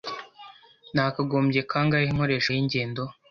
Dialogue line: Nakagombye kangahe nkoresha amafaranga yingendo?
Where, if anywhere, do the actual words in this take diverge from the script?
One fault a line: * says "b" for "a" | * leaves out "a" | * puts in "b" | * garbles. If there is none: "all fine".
* leaves out "amafaranga"